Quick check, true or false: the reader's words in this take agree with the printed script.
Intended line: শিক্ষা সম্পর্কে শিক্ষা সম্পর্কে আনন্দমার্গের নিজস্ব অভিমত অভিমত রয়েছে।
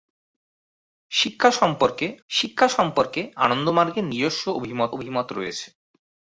true